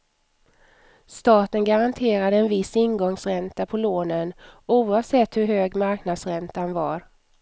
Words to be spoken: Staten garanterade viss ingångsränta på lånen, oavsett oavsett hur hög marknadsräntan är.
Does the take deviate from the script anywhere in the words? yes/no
yes